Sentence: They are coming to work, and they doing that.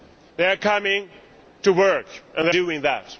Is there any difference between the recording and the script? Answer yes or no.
no